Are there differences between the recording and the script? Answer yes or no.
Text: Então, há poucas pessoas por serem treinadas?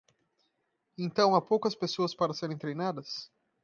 yes